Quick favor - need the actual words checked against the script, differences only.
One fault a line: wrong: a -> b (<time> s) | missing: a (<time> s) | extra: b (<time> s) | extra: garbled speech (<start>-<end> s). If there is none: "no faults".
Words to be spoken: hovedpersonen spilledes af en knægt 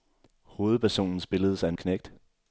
no faults